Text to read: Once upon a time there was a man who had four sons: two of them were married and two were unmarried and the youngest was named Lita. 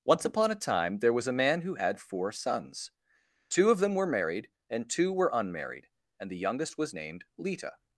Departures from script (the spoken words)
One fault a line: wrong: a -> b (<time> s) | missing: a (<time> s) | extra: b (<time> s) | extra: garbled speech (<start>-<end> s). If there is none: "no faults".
no faults